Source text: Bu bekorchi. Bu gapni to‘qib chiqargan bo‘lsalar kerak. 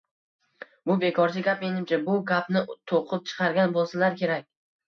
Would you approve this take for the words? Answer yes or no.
no